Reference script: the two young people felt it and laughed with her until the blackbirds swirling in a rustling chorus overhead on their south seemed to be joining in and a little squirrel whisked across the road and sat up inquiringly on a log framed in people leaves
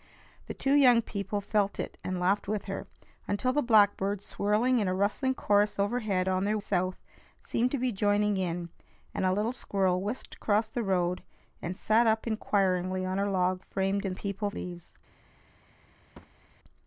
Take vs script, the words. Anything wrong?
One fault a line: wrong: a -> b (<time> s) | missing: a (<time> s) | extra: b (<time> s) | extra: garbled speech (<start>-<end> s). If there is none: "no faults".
no faults